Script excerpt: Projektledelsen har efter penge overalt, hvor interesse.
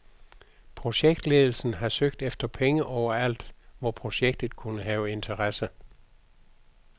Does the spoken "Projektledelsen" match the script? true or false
true